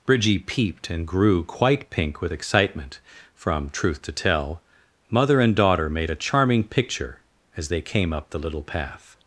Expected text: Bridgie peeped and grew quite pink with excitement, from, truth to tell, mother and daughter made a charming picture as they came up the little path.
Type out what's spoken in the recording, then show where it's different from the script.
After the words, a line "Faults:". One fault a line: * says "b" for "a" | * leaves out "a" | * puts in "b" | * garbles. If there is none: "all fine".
Bridgie peeped and grew quite pink with excitement, from, truth to tell, mother and daughter made a charming picture as they came up the little path.
Faults:
all fine